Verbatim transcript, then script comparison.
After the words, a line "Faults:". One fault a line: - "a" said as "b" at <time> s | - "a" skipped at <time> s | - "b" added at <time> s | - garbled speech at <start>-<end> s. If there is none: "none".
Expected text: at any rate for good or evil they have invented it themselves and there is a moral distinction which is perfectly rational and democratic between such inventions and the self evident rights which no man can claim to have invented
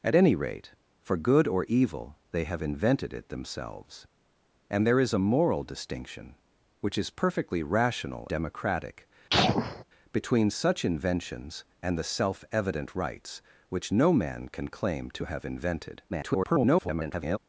at any rate for good or evil they have invented it themselves and there is a moral distinction which is perfectly rational democratic between such inventions and the self evident rights which no man can claim to have invented [garbled]
Faults:
- "and" skipped at 8.3 s
- garbled speech at 16.1-17.4 s